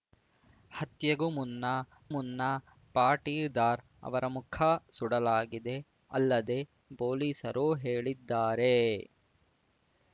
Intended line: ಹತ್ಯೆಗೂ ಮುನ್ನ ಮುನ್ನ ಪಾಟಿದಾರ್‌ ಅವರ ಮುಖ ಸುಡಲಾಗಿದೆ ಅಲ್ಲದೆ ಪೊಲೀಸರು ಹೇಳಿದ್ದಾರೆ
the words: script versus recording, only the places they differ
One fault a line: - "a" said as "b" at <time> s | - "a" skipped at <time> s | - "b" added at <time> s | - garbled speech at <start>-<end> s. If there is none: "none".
none